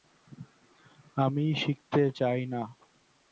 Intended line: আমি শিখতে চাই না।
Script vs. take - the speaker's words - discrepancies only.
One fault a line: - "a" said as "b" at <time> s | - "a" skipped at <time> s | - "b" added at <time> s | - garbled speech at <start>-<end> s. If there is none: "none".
none